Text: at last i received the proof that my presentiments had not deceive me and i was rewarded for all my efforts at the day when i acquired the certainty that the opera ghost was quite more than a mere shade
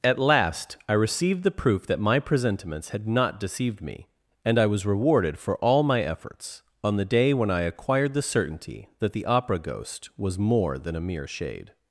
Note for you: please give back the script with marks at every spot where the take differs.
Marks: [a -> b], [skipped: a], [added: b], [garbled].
at last i received the proof that my presentiments had not [deceive -> deceived] me and i was rewarded for all my efforts [at -> on] the day when i acquired the certainty that the opera ghost was [skipped: quite] more than a mere shade